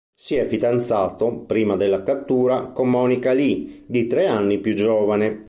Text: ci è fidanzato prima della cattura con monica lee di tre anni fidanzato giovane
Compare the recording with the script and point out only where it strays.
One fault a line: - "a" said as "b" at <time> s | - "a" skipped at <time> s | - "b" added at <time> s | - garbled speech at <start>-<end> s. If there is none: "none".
- "ci" said as "si" at 0.1 s
- "fidanzato" said as "più" at 4.6 s